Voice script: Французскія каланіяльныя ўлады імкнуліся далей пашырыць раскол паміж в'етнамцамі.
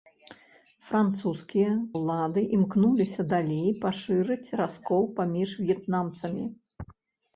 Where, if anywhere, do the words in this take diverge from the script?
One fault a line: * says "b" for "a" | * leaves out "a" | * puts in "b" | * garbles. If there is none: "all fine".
* leaves out "каланіяльныя"